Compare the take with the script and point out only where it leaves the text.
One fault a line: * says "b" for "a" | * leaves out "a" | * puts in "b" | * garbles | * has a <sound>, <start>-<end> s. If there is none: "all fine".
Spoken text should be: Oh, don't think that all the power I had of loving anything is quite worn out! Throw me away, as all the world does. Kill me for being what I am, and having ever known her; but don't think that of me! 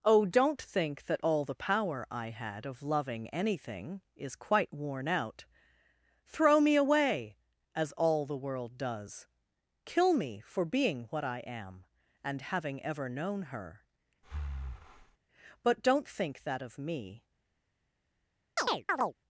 * has a breath, 14.2-15.2 s
* has a chirp, 18.6-19.1 s